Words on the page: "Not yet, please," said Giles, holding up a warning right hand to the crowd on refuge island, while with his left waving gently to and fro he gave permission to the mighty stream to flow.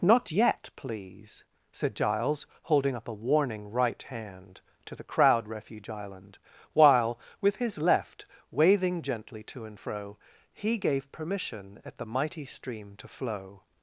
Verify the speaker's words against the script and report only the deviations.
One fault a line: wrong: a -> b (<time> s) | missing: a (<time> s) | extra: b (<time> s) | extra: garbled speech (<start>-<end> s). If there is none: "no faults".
missing: on (5.5 s)
wrong: to -> at (11.8 s)